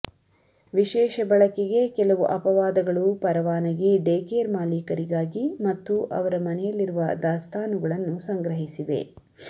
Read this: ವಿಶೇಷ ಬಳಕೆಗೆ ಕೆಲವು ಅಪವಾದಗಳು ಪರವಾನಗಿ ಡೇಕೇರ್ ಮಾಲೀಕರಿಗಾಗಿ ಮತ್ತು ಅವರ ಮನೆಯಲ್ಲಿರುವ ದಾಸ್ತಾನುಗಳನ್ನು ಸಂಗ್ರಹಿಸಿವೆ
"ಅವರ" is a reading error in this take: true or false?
false